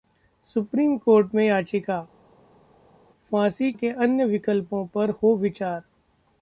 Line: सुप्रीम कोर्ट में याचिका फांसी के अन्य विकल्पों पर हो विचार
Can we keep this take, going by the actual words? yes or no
yes